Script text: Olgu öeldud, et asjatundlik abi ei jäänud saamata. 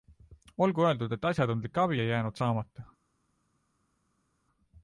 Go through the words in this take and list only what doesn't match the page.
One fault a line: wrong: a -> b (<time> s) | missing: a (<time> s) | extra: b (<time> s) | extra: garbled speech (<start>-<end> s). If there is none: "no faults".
no faults